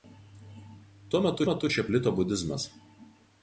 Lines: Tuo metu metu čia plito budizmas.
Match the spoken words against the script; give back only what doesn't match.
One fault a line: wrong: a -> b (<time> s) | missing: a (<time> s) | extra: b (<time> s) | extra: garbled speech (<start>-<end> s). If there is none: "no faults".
no faults